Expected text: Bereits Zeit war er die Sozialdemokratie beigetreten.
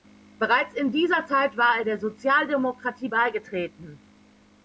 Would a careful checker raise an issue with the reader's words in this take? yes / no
yes